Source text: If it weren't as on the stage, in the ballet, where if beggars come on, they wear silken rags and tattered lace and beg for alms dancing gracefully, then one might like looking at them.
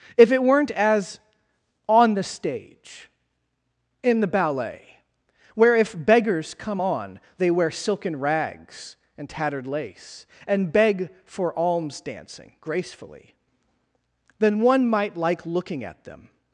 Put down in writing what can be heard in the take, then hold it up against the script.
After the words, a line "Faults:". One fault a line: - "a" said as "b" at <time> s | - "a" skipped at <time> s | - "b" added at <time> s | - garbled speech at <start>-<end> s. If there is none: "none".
If it weren't as on the stage, in the ballet, where if beggars come on, they wear silken rags and tattered lace and beg for alms dancing gracefully, then one might like looking at them.
Faults:
none